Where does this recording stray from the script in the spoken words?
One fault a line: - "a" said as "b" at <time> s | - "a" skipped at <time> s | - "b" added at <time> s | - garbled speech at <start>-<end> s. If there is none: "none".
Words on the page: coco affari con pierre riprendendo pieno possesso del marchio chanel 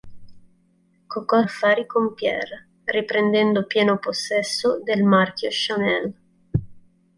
none